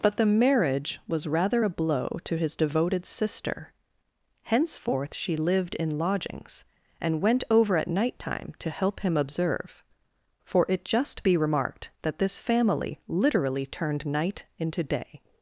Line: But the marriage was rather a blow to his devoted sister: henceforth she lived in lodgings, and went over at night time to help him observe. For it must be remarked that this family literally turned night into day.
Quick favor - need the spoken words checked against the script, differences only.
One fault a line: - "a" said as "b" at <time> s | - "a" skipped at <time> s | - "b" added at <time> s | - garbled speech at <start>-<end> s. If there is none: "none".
- "must" said as "just" at 10.8 s